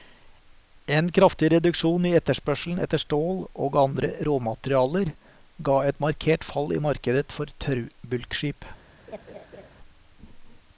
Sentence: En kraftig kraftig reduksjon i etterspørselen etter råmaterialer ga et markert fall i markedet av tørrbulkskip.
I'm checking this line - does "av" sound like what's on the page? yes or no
no